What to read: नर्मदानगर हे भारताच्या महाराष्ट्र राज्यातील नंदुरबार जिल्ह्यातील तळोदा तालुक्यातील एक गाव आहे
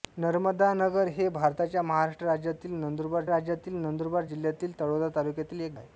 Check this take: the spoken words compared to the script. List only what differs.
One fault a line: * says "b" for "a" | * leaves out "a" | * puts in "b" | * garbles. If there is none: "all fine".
* puts in "राज्यातील नंदुरबार"
* leaves out "गाव"